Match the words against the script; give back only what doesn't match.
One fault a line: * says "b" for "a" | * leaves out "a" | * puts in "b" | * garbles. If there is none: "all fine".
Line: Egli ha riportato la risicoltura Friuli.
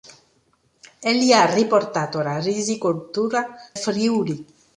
all fine